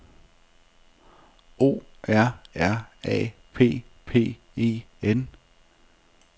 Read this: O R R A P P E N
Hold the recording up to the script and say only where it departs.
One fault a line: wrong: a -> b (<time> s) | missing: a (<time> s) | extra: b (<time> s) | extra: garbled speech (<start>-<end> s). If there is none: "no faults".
no faults